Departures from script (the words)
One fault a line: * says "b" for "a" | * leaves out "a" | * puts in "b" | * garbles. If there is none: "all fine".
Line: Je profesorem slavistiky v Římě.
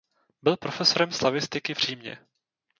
* says "Byl" for "Je"